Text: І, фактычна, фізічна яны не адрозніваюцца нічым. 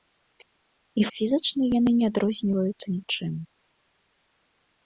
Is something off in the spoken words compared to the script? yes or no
yes